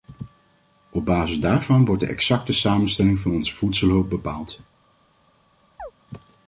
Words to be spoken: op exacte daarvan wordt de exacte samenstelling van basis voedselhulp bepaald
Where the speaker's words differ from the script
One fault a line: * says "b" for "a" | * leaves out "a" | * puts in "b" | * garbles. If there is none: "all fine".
* says "basis" for "exacte"
* says "onze" for "basis"